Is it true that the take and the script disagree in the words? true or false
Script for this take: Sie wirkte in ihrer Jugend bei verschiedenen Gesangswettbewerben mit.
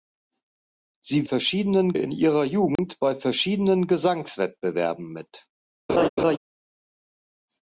true